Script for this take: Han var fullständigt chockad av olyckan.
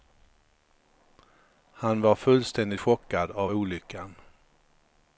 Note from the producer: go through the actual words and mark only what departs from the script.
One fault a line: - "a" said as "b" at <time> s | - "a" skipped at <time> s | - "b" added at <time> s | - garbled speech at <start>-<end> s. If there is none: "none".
none